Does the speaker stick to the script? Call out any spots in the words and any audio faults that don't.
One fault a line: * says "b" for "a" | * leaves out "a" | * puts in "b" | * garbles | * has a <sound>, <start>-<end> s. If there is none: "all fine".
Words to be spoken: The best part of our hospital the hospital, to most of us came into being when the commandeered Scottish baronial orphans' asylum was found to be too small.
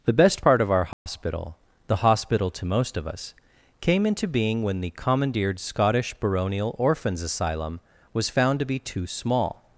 * has a dropout, 0.9-1.1 s